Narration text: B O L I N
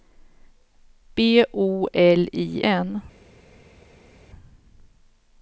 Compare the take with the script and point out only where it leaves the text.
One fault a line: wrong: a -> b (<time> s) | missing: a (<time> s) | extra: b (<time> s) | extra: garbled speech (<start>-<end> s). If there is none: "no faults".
no faults